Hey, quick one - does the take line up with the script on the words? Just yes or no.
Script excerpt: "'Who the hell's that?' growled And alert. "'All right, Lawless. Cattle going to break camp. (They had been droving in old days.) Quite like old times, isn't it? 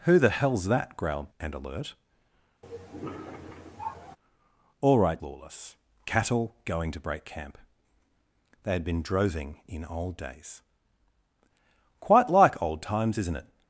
yes